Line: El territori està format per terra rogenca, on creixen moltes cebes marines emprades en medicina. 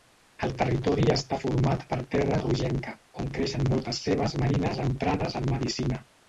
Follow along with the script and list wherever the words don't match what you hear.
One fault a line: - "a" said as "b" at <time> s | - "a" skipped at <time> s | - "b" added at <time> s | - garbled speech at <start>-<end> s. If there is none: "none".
none